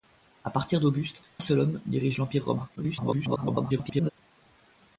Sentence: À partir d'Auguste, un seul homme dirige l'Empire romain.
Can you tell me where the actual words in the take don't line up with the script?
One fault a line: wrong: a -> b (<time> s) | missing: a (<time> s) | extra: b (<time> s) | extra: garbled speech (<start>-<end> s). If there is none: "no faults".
missing: un (1.2 s)
extra: garbled speech (2.8-4.1 s)